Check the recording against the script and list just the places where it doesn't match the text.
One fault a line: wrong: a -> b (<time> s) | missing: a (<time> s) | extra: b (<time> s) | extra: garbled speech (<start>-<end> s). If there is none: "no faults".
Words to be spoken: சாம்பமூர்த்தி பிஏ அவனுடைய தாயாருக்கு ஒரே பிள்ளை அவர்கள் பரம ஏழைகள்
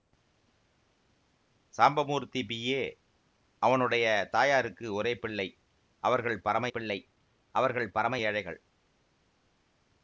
extra: பிள்ளை அவர்கள் பரம (6.7 s)